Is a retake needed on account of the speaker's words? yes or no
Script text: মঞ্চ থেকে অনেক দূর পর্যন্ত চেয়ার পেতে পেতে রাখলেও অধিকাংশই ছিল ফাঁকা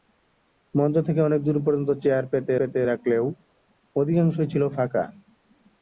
no